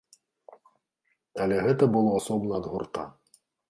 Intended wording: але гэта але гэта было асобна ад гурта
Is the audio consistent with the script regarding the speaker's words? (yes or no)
no